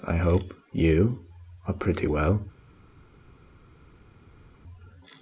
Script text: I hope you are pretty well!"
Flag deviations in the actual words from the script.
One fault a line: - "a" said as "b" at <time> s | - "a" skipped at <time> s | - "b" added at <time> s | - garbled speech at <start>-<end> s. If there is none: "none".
none